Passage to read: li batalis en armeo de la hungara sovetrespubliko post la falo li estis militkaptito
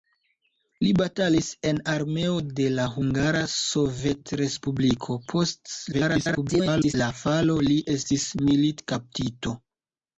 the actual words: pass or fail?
fail